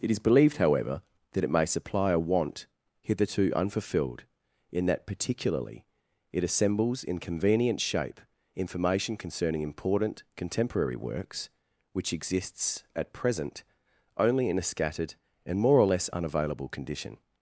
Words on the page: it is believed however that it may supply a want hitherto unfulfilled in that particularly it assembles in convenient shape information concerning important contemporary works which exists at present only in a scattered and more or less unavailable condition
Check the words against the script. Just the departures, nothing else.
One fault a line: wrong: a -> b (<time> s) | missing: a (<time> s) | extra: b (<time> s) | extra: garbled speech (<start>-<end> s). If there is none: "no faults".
no faults